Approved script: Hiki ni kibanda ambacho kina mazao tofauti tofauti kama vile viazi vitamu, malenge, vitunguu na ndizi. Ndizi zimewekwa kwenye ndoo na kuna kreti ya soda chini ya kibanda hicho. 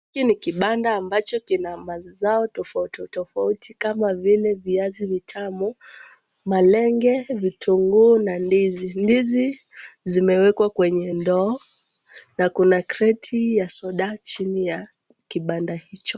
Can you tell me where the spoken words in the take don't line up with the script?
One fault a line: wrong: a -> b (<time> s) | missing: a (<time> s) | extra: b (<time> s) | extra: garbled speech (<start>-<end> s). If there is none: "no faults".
no faults